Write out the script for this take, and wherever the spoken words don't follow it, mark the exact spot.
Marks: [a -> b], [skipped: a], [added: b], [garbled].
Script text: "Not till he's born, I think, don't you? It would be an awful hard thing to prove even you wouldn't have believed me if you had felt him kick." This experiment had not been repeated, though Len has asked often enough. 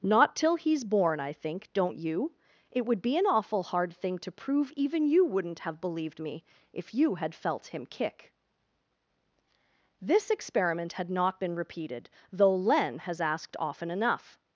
"Not till he's born, I think, don't you? It would be an awful hard thing to prove even you wouldn't have believed me if you had felt him kick." This experiment had not been repeated, though Len has asked often enough.